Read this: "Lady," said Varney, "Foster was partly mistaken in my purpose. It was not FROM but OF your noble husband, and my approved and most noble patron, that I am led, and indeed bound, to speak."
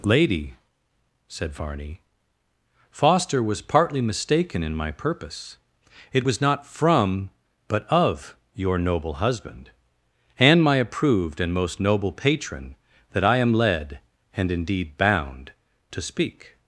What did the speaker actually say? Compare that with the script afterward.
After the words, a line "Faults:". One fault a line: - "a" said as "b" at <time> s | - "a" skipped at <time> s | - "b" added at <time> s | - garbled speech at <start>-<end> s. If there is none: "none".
"Lady," said Varney, "Foster was partly mistaken in my purpose. It was not FROM but OF your noble husband, and my approved and most noble patron, that I am led, and indeed bound, to speak."
Faults:
none